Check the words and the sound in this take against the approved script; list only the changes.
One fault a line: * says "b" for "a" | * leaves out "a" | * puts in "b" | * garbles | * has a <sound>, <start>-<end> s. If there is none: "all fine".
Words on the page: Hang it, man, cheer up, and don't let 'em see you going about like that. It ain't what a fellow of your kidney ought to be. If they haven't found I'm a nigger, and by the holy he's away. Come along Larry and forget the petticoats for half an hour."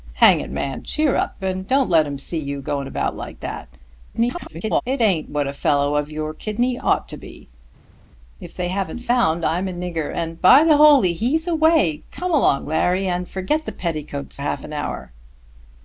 * garbles
* leaves out "for"